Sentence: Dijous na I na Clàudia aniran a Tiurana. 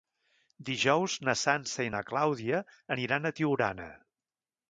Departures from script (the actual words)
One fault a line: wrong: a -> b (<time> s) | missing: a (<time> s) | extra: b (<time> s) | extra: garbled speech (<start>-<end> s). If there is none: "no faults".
extra: Sança (1.4 s)